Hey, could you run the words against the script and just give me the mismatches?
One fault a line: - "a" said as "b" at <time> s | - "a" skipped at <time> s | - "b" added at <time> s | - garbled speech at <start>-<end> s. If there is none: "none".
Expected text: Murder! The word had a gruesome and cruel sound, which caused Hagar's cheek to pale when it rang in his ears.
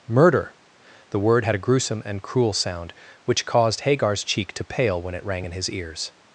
none